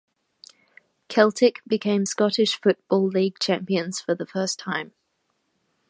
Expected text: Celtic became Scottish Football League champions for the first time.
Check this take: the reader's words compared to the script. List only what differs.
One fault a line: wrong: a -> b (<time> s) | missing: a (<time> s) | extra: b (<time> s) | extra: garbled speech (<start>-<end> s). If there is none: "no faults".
no faults